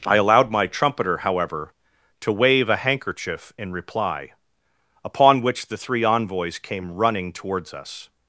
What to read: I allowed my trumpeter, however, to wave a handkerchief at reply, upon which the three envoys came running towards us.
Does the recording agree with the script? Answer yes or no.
no